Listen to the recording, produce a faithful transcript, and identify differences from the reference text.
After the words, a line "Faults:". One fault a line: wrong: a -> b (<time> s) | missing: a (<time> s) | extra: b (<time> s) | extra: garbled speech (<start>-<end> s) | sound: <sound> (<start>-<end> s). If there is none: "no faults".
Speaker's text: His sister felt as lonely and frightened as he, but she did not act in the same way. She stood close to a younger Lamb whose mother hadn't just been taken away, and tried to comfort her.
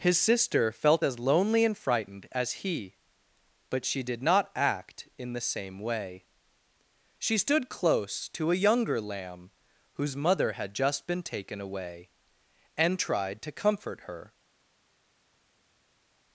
His sister felt as lonely and frightened as he, but she did not act in the same way. She stood close to a younger Lamb whose mother had just been taken away, and tried to comfort her.
Faults:
wrong: hadn't -> had (10.5 s)